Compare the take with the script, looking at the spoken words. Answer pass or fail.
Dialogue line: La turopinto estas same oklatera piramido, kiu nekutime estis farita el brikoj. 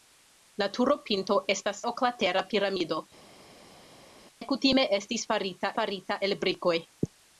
fail